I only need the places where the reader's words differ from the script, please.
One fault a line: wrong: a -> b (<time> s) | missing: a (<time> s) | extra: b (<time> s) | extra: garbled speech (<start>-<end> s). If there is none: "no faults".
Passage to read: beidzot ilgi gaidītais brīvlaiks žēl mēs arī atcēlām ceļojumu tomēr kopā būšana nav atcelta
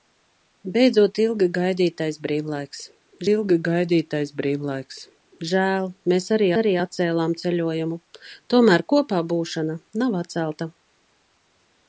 extra: ilgi gaidītais brīvlaiks (3.3 s)
extra: arī (6.6 s)